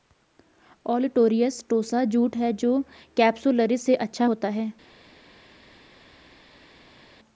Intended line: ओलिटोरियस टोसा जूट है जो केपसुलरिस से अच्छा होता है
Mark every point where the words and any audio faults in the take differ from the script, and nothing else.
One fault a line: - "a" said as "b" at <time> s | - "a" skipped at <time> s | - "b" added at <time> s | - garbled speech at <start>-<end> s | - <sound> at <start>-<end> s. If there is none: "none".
none